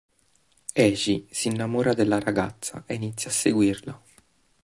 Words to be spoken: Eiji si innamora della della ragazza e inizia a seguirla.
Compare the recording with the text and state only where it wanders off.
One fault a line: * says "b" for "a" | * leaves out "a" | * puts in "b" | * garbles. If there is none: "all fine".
* leaves out "della"